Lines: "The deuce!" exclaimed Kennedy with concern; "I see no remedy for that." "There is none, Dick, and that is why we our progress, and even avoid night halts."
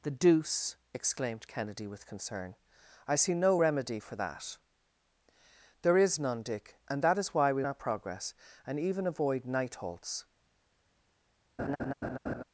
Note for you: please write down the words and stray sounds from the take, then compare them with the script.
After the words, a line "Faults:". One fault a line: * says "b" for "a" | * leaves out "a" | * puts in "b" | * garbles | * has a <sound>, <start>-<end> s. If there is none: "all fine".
"The deuce!" exclaimed Kennedy with concern; "I see no remedy for that." "There is none, Dick, and that is why we our progress, and even avoid night halts."
Faults:
* has a laugh, 11.6-12.4 s